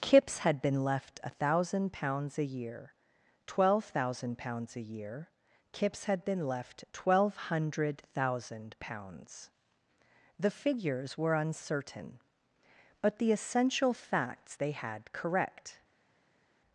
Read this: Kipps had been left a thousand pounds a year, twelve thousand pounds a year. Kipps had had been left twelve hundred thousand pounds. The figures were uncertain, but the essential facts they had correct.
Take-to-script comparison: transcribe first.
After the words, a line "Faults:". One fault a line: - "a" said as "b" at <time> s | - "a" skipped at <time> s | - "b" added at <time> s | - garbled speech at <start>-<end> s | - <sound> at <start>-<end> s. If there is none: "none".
Kipps had been left a thousand pounds a year, twelve thousand pounds a year. Kipps had been left twelve hundred thousand pounds. The figures were uncertain, but the essential facts they had correct.
Faults:
- "had" skipped at 6.2 s